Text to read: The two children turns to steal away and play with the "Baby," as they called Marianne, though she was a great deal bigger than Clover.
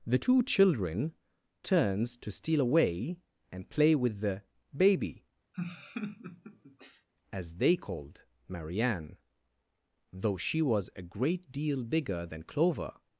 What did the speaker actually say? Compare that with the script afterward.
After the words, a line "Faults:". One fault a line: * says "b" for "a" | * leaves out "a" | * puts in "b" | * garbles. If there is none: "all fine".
The two children turns to steal away and play with the "Baby," as they called Marianne, though she was a great deal bigger than Clover.
Faults:
all fine